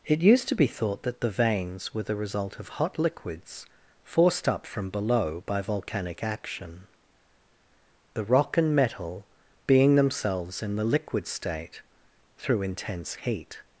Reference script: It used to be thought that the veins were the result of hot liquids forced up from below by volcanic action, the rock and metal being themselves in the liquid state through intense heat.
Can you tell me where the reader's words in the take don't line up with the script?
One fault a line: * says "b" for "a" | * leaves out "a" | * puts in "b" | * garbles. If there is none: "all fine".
all fine